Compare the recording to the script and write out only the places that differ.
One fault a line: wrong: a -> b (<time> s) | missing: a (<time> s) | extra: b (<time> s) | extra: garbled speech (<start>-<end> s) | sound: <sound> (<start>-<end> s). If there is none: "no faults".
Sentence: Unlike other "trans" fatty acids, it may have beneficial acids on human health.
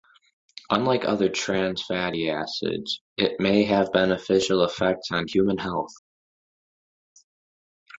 wrong: acids -> effects (4.6 s)